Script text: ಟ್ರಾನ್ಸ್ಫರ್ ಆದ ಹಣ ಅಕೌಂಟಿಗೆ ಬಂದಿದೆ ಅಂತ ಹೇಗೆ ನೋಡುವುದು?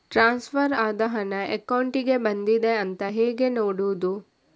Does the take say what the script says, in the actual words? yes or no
yes